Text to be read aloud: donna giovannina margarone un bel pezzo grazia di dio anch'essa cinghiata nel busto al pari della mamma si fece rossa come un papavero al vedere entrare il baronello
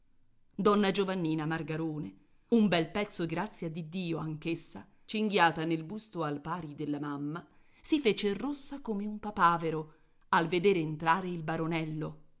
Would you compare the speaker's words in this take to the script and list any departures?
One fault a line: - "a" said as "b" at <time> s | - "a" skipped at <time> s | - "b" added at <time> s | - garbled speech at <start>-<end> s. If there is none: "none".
none